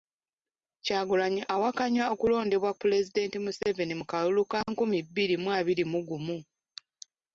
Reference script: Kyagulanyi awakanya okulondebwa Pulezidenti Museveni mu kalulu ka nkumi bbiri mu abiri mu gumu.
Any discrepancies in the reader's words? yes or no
no